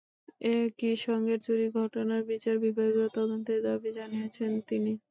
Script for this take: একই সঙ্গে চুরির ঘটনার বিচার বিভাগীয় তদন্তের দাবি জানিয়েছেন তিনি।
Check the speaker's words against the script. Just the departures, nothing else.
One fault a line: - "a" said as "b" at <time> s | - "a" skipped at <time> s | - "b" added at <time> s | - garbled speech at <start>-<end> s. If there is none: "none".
none